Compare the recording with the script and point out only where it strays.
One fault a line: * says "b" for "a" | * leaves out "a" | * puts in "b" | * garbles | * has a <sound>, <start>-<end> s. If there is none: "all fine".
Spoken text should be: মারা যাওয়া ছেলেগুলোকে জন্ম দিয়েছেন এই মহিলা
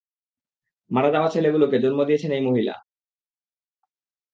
all fine